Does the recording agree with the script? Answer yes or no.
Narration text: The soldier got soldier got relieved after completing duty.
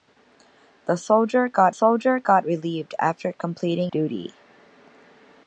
yes